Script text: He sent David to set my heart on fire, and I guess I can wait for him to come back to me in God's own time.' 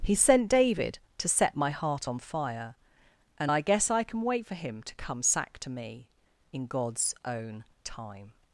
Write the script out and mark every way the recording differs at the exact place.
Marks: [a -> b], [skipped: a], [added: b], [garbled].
He sent David to set my heart on fire, and I guess I can wait for him to come [back -> sack] to me in God's own time.'